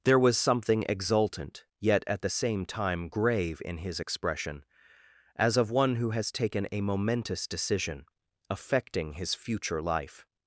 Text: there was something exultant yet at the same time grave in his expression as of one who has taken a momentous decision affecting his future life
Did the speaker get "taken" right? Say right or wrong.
right